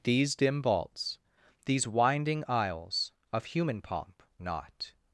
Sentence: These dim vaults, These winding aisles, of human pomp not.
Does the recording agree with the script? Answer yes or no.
yes